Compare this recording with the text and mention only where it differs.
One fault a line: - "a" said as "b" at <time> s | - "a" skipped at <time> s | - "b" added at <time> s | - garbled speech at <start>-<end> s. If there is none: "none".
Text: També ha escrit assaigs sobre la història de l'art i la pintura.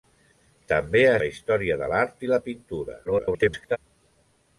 - "escrit assaigs sobre" skipped at 1.2 s
- garbled speech at 3.0-3.8 s